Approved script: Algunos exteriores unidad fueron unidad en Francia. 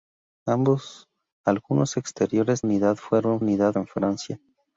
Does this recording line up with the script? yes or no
yes